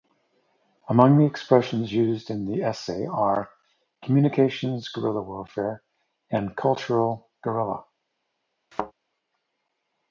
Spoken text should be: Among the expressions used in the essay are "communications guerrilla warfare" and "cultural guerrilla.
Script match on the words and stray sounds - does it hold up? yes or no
no